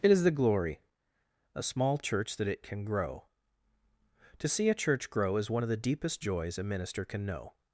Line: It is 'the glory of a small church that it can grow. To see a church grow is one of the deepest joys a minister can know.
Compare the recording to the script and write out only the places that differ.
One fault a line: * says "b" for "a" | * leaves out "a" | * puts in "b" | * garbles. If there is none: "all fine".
* leaves out "of"